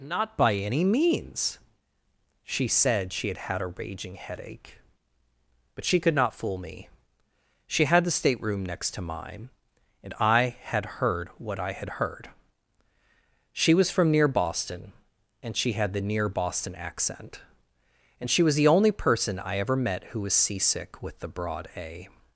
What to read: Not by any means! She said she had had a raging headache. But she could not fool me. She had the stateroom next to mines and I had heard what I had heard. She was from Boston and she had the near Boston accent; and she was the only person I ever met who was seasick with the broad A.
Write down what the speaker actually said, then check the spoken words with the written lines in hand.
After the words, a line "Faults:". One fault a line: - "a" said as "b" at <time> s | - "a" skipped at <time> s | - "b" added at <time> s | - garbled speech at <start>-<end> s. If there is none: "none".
Not by any means! She said she had had a raging headache. But she could not fool me. She had the stateroom next to mine and I had heard what I had heard. She was from near Boston and she had the near Boston accent; and she was the only person I ever met who was seasick with the broad A.
Faults:
- "mines" said as "mine" at 9.0 s
- "near" added at 14.1 s